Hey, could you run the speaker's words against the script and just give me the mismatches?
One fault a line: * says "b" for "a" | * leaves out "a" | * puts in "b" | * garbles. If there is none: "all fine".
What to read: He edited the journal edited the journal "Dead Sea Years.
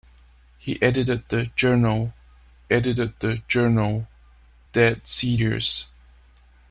all fine